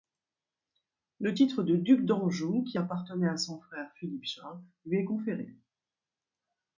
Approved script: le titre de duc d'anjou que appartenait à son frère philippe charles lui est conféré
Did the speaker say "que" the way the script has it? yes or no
no